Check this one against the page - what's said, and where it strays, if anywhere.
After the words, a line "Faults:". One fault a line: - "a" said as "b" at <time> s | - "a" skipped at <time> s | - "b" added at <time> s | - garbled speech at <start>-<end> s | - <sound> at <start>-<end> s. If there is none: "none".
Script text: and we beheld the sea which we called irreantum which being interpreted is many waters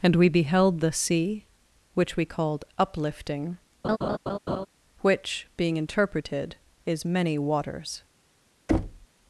and we beheld the sea which we called uplifting which being interpreted is many waters
Faults:
- "irreantum" said as "uplifting" at 2.8 s
- laugh at 3.8-4.7 s
- thud at 8.7-9.1 s